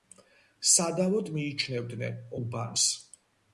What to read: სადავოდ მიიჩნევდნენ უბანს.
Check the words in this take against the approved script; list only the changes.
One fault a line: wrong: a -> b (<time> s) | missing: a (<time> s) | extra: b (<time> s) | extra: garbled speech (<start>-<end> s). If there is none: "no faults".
no faults